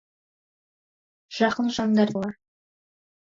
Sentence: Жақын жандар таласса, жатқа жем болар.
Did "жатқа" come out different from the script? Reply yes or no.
yes